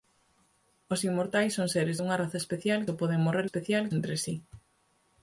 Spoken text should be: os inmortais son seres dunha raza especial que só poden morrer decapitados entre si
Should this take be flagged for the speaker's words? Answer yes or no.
yes